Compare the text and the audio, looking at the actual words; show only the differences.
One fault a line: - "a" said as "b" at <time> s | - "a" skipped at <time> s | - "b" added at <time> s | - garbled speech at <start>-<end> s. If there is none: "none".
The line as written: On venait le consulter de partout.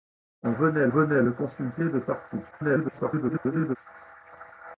- "venait" added at 0.9 s
- garbled speech at 2.5-3.8 s